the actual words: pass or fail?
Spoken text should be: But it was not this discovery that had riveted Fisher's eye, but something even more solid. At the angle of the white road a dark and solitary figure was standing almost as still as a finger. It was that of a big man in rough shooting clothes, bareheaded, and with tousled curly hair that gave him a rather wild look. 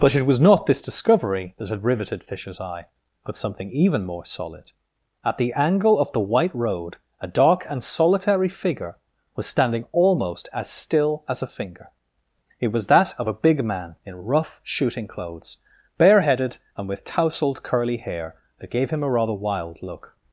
pass